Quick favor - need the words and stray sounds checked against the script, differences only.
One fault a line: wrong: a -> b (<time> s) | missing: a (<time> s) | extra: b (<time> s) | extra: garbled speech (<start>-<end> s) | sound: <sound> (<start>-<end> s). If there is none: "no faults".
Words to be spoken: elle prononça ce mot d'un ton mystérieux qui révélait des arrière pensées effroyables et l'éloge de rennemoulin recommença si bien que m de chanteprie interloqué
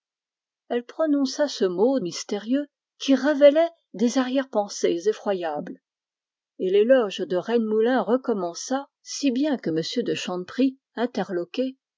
missing: d'un ton (2.0 s)